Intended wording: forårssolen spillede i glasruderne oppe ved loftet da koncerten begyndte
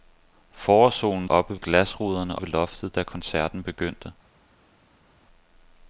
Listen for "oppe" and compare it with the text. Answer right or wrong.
wrong